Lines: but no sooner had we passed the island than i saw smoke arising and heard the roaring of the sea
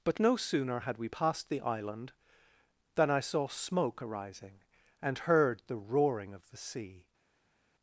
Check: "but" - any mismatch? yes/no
no